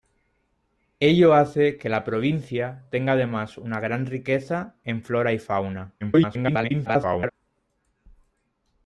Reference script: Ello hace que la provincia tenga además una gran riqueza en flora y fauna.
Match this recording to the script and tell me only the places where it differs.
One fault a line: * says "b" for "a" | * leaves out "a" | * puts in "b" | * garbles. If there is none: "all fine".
* garbles